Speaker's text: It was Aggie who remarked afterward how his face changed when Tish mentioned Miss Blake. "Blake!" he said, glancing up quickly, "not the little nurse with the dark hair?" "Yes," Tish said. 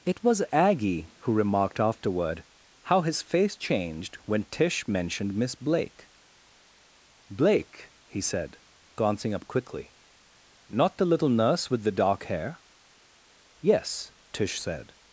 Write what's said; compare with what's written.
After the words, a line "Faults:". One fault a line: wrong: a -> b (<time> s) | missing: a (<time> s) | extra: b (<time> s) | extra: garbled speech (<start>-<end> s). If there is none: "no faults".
It was Aggie who remarked afterward how his face changed when Tish mentioned Miss Blake. "Blake!" he said, glancing up quickly, "not the little nurse with the dark hair?" "Yes," Tish said.
Faults:
no faults